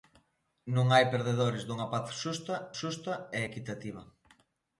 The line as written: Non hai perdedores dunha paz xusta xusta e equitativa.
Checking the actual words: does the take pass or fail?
pass